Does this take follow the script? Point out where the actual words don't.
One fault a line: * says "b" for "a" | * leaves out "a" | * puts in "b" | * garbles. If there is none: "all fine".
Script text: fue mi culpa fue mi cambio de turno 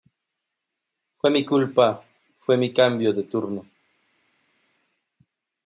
all fine